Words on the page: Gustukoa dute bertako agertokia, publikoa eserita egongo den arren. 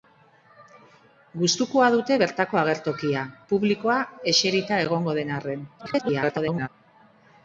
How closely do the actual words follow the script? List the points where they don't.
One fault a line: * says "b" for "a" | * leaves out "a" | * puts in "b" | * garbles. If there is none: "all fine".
* garbles